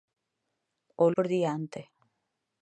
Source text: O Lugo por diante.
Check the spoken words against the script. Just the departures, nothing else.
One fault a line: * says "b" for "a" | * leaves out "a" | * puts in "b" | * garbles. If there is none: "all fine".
* leaves out "Lugo"